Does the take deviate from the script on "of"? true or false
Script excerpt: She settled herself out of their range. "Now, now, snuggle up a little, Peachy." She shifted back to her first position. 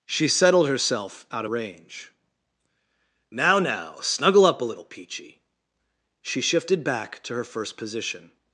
true